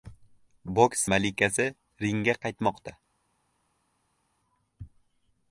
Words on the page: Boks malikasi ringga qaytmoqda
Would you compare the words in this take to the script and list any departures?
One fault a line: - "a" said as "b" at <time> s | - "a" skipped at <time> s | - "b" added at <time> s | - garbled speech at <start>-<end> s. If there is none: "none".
none